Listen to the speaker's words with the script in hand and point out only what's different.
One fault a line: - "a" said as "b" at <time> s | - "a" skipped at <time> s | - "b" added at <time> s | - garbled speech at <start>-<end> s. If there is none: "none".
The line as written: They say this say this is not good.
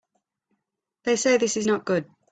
- "say this" skipped at 1.6 s